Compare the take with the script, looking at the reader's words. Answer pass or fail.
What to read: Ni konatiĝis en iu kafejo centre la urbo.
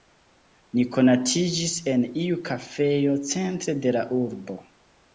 fail